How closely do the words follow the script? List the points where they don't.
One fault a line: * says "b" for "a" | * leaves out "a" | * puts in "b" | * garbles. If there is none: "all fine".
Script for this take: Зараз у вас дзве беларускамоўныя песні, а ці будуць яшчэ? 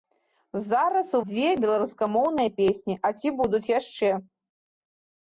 * leaves out "вас"